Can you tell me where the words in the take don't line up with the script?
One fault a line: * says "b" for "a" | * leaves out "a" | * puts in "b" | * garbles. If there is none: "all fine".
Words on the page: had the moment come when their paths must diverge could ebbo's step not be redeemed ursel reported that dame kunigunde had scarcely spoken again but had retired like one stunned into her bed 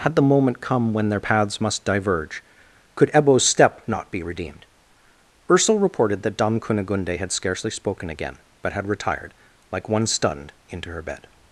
all fine